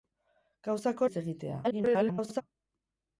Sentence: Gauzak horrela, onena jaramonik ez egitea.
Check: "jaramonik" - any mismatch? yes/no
yes